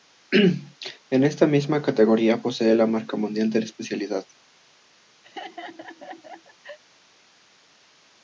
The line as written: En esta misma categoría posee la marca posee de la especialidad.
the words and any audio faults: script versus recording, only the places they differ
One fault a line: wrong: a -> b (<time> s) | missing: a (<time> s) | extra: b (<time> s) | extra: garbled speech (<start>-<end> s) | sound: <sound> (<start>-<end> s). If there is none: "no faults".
wrong: posee -> mundial (3.2 s)
sound: laugh (5.2-6.8 s)